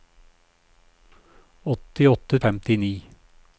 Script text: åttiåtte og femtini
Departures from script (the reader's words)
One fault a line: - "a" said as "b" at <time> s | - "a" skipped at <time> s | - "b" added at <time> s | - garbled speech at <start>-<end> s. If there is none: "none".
none